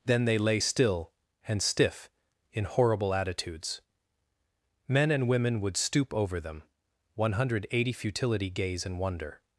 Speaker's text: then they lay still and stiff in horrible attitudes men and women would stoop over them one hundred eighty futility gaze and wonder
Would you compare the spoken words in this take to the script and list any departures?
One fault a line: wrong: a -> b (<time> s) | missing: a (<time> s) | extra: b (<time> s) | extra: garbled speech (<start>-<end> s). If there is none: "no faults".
no faults